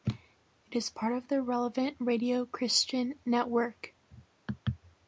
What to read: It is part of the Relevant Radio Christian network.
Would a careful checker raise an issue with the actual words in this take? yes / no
no